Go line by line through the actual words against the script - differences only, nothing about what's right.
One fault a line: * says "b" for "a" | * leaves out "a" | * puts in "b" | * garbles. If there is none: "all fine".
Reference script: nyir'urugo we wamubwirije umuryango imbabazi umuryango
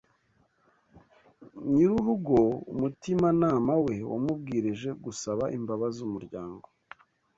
* puts in "umutimanama"
* says "gusaba" for "umuryango"